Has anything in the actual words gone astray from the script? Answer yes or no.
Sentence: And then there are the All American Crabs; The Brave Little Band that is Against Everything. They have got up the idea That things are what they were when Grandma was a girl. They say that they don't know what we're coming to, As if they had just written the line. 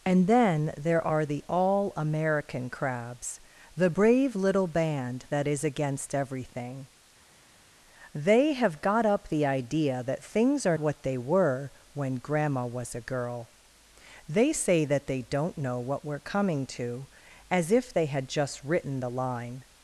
no